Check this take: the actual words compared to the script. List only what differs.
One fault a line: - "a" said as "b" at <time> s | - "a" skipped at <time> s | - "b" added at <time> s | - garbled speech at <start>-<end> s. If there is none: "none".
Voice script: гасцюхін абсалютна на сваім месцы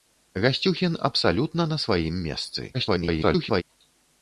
- garbled speech at 2.7-3.6 s